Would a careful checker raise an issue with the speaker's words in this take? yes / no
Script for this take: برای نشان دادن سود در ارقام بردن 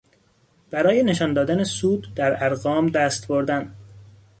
yes